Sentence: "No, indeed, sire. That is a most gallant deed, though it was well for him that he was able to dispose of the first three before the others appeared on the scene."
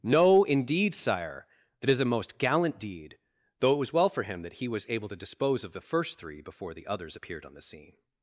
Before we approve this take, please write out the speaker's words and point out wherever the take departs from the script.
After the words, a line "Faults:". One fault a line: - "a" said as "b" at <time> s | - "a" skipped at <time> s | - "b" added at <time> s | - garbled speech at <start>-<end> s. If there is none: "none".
"No, indeed, sire. That is a most gallant deed, though it was well for him that he was able to dispose of the first three before the others appeared on the scene."
Faults:
none